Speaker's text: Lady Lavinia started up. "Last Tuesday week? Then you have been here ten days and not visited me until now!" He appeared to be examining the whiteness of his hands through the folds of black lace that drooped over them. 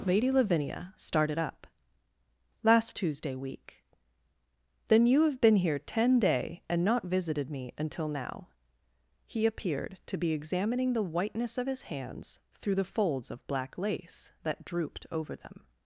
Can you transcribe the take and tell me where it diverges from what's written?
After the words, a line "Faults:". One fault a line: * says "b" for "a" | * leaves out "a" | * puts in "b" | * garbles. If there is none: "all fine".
Lady Lavinia started up. "Last Tuesday week? Then you have been here ten day and not visited me until now!" He appeared to be examining the whiteness of his hands through the folds of black lace that drooped over them.
Faults:
* says "day" for "days"